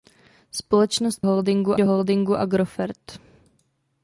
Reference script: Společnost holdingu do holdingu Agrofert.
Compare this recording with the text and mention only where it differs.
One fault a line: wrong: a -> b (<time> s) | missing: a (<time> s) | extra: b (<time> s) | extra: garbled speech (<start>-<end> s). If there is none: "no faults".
no faults